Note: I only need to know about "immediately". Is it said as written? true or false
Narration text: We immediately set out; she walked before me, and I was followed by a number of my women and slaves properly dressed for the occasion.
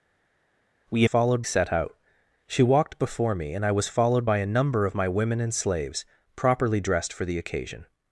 false